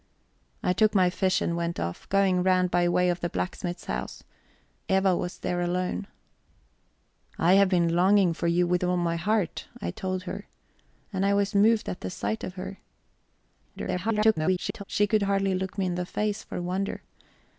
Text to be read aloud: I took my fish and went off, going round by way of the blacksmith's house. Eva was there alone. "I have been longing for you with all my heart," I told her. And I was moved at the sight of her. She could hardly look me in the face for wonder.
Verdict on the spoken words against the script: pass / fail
fail